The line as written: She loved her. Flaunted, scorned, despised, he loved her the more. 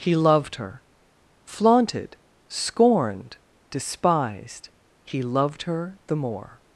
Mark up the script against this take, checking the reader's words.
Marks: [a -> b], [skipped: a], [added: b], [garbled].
[She -> He] loved her. Flaunted, scorned, despised, he loved her the more.